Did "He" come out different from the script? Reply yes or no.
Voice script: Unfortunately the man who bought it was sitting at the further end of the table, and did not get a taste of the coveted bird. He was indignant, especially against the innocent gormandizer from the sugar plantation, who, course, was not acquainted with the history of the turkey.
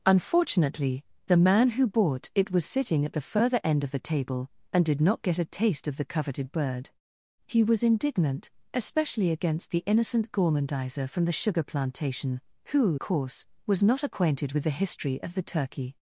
no